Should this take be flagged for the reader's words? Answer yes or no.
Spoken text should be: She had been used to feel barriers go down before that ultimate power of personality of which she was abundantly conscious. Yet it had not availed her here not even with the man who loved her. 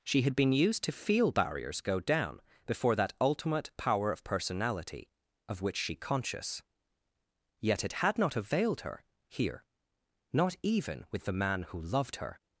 yes